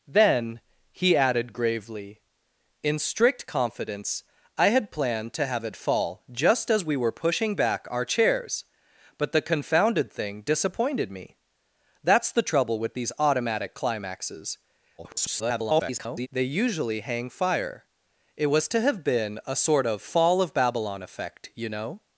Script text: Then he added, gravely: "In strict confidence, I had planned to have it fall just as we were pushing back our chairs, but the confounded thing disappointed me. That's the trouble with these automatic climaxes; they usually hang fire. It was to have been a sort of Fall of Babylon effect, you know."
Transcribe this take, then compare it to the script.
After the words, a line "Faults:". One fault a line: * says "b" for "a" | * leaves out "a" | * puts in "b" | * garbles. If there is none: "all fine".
Then he added, gravely: "In strict confidence, I had planned to have it fall just as we were pushing back our chairs, but the confounded thing disappointed me. That's the trouble with these automatic climaxes; [garbled] they usually hang fire. It was to have been a sort of Fall of Babylon effect, you know."
Faults:
* garbles